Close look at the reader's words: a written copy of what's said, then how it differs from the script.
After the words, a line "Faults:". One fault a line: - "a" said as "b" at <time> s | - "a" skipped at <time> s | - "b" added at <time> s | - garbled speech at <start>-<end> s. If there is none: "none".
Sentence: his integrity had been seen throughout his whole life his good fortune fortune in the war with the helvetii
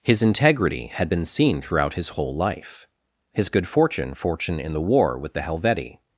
his integrity had been seen throughout his whole life his good fortune fortune in the war with the helvetii
Faults:
none